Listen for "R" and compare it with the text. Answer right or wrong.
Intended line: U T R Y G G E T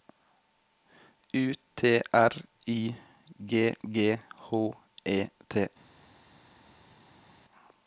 right